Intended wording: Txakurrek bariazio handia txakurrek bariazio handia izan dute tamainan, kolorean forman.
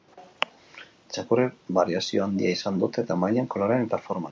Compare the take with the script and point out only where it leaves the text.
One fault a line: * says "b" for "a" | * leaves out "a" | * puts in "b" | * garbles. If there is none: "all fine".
* leaves out "txakurrek bariazio handia"
* puts in "eta"